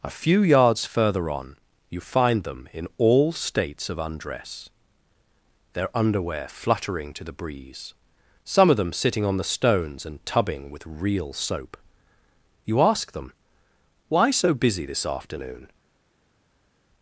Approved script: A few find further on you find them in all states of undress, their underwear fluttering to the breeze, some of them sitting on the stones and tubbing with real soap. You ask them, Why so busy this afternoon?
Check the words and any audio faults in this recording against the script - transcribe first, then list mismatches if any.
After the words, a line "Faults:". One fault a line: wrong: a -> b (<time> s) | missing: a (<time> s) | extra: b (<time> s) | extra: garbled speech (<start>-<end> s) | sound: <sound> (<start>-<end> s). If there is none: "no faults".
A few yards further on you find them in all states of undress, their underwear fluttering to the breeze, some of them sitting on the stones and tubbing with real soap. You ask them, Why so busy this afternoon?
Faults:
wrong: find -> yards (0.4 s)